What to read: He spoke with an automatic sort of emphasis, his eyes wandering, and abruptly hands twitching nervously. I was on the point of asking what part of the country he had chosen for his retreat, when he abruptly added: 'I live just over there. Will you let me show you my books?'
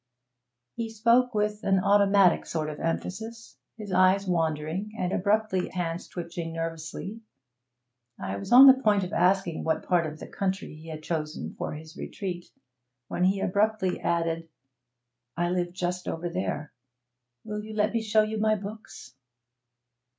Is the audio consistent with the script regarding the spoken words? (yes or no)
yes